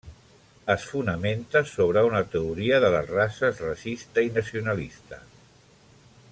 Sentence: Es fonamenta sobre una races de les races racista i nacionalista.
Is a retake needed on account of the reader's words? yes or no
yes